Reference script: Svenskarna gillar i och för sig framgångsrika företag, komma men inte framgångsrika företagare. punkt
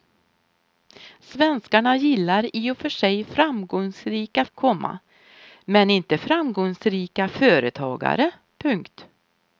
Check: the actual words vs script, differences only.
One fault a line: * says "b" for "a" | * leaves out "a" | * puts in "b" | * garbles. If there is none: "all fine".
* leaves out "företag"